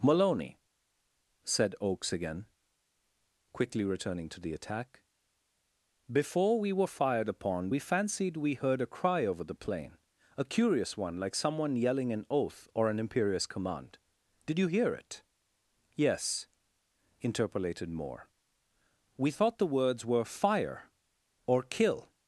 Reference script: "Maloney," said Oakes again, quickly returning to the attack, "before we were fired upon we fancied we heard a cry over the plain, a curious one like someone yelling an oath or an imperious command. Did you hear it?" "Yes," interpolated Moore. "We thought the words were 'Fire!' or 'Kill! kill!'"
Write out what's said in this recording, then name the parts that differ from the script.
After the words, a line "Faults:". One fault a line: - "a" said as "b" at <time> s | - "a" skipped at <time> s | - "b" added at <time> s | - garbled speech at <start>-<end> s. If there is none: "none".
"Maloney," said Oakes again, quickly returning to the attack, "before we were fired upon we fancied we heard a cry over the plain, a curious one like someone yelling an oath or an imperious command. Did you hear it?" "Yes," interpolated Moore. "We thought the words were 'Fire!' or 'Kill!'"
Faults:
- "kill" skipped at 22.1 s